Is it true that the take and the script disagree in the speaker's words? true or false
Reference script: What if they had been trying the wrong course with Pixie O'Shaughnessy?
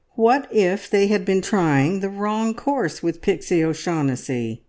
false